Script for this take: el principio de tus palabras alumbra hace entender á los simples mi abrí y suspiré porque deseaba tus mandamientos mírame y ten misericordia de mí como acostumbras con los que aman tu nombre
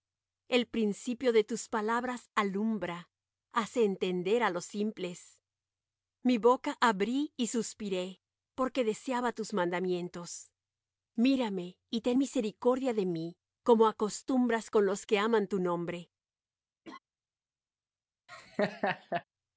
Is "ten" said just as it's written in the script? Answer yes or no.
yes